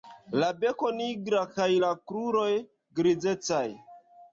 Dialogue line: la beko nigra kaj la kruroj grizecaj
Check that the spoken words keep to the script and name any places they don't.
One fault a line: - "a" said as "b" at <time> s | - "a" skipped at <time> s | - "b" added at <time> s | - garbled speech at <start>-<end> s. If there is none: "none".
none